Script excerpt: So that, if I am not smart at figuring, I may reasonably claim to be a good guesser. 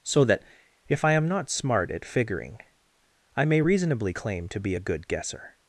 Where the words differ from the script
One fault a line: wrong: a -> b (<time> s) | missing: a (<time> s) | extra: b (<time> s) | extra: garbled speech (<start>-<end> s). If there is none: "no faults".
no faults